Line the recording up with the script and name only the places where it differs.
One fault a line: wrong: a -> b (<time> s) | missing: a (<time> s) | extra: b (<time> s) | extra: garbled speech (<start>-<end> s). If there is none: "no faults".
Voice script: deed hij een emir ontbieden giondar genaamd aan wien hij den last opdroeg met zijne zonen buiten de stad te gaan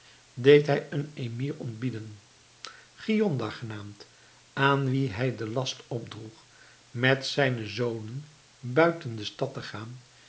no faults